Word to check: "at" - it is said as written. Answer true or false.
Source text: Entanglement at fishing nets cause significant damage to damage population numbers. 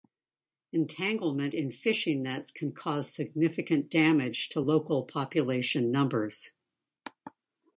false